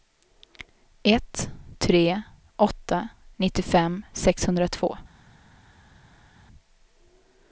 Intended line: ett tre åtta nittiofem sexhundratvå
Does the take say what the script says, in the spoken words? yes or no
yes